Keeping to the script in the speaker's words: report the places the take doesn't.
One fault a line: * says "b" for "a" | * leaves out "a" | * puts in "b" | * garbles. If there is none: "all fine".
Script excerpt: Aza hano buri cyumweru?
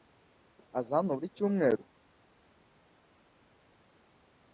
all fine